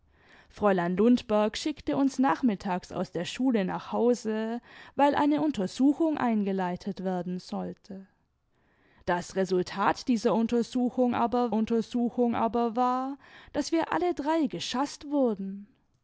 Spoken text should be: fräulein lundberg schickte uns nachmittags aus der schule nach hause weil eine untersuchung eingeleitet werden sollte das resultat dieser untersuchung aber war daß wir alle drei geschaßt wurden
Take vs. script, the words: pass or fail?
fail